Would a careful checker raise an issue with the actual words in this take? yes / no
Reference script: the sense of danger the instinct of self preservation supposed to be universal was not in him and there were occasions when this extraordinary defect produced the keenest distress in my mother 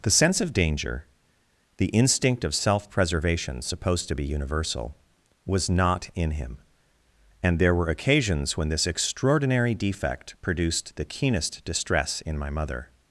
no